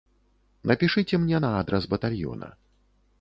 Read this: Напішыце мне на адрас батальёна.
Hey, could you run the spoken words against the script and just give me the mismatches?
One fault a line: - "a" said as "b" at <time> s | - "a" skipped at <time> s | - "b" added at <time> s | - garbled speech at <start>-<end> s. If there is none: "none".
none